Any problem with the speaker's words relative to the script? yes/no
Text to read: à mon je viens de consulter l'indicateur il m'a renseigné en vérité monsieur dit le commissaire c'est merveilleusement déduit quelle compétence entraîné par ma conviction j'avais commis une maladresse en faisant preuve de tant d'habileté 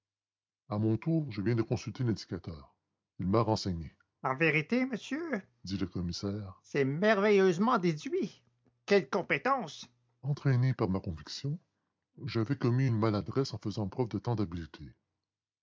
yes